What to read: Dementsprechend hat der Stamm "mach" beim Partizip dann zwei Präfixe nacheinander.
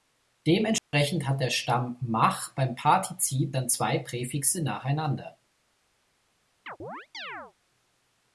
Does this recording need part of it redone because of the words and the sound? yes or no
yes